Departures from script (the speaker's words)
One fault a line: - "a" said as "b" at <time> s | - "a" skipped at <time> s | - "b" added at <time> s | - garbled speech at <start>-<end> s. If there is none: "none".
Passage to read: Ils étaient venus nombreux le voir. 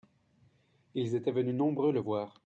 none